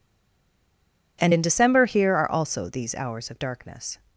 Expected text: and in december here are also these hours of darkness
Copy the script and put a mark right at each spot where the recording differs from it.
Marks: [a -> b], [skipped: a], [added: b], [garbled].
and in december here are also these hours of darkness